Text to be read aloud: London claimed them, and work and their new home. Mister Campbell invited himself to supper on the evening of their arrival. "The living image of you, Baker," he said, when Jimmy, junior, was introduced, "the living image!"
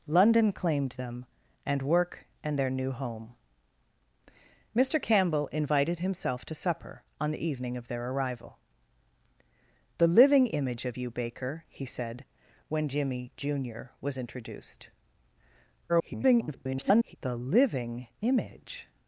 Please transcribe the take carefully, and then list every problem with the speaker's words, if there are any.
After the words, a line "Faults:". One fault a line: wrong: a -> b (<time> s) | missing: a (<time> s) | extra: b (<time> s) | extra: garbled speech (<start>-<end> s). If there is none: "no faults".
London claimed them, and work and their new home. Mister Campbell invited himself to supper on the evening of their arrival. "The living image of you, Baker," he said, when Jimmy, junior, was introduced, [garbled] "the living image!"
Faults:
extra: garbled speech (15.9-17.2 s)